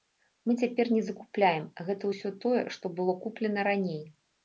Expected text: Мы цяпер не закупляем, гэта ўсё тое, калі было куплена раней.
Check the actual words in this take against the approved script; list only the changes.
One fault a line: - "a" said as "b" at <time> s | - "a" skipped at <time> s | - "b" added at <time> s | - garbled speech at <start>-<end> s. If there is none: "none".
- "калі" said as "што" at 2.8 s